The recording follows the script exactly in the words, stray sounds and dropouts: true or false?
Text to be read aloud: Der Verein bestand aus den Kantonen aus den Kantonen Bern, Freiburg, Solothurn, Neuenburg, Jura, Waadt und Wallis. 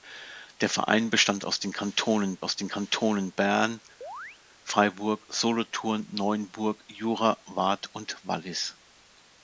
false